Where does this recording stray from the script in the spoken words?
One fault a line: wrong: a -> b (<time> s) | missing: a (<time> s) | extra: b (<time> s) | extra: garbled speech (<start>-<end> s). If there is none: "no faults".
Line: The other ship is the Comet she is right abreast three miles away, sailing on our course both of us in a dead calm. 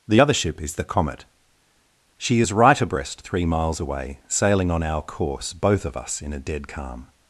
no faults